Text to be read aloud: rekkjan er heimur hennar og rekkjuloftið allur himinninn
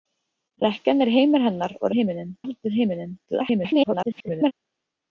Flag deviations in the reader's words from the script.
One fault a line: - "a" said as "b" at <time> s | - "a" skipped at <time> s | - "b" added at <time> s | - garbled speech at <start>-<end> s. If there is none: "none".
- "rekkjuloftið" said as "himinninn" at 1.9 s
- garbled speech at 3.3-4.5 s